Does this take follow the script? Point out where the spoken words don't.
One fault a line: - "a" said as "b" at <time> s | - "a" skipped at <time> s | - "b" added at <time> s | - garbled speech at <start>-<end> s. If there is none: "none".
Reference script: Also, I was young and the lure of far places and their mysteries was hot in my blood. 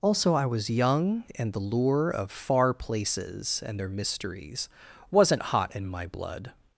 - "was" said as "wasn't" at 5.1 s